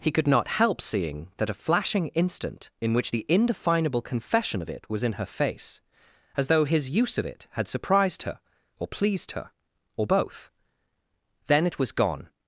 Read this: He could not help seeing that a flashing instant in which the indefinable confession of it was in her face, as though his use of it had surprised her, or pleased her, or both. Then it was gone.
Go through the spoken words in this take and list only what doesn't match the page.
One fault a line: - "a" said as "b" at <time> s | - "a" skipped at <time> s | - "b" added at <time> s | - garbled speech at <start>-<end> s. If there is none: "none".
none